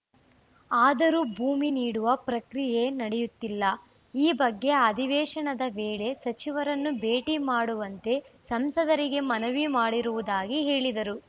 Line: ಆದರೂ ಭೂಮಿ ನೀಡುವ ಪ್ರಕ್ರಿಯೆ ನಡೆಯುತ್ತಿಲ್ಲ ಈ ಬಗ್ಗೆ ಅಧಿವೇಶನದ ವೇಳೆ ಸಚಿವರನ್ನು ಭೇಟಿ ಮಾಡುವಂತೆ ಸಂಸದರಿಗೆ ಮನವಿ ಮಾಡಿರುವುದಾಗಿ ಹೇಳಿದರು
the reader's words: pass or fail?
pass